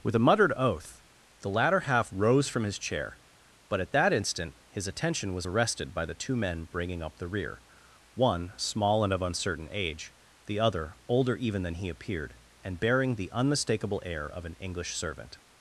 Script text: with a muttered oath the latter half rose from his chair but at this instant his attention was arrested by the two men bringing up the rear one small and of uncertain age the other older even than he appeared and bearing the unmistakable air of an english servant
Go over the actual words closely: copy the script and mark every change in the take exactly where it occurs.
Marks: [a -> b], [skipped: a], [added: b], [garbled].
with a muttered oath the latter half rose from his chair but at [this -> that] instant his attention was arrested by the two men bringing up the rear one small and of uncertain age the other older even than he appeared and bearing the unmistakable air of an english servant